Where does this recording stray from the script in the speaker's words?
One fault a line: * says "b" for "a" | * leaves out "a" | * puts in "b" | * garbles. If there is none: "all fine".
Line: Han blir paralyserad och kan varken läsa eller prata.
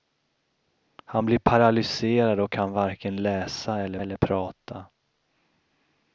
* puts in "eller"